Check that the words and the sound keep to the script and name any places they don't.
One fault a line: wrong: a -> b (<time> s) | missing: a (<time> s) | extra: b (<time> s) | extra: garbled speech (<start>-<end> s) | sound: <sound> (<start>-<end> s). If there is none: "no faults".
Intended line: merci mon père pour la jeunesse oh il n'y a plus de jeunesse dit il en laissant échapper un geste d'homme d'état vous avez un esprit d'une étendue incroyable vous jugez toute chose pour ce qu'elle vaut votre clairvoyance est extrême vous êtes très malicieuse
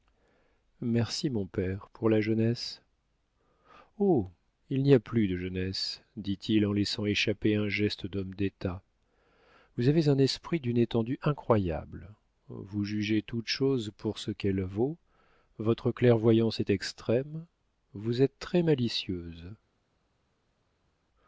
no faults